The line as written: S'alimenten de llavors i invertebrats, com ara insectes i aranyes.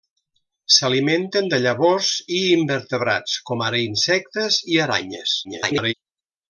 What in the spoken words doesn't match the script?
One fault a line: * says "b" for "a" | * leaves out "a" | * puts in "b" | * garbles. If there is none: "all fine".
* garbles